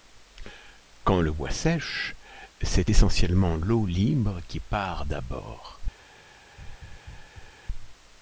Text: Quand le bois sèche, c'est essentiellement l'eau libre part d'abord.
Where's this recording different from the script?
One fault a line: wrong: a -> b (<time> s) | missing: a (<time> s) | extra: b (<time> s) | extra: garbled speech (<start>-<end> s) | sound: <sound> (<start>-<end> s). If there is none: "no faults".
extra: qui (4.5 s)
sound: laugh (6.6-7.5 s)